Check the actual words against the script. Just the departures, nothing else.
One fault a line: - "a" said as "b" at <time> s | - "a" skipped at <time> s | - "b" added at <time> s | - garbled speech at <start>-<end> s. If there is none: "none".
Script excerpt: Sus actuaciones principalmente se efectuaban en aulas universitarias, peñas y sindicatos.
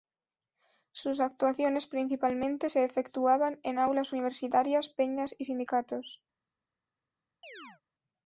none